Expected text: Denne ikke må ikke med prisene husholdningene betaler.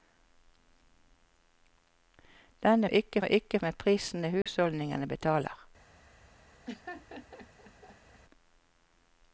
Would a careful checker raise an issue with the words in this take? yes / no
no